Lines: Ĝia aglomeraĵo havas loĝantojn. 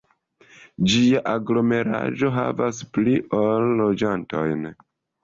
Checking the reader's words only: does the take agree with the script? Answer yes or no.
no